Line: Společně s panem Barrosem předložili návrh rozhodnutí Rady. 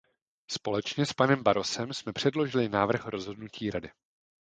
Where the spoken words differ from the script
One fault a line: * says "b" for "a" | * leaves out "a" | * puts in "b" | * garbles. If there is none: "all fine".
* puts in "jsme"